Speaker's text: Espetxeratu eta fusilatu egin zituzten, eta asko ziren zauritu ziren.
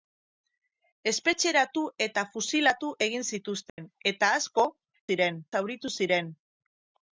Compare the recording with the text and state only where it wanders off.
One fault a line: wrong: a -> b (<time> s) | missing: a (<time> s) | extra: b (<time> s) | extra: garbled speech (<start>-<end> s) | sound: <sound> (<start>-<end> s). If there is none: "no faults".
sound: dropout (3.7-3.8 s)